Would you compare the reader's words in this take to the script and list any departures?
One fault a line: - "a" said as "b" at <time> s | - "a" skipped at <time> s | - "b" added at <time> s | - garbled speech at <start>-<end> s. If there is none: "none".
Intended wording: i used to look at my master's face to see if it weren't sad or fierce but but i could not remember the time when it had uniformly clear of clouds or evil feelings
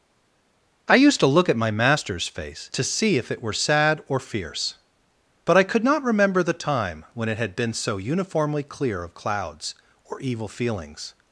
- "weren't" said as "were" at 3.4 s
- "but" skipped at 5.6 s
- "been so" added at 7.5 s